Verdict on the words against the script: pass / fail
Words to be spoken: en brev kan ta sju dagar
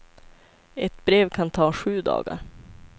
fail